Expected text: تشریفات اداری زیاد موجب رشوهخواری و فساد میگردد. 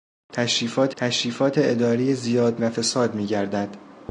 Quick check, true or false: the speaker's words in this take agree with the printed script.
false